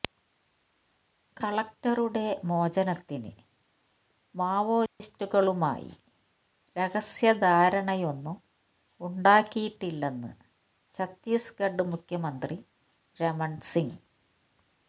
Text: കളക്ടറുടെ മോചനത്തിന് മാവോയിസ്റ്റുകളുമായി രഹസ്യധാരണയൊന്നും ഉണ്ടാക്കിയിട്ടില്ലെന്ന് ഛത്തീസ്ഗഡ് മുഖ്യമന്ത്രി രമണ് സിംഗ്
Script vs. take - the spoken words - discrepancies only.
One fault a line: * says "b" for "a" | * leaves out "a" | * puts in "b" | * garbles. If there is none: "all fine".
all fine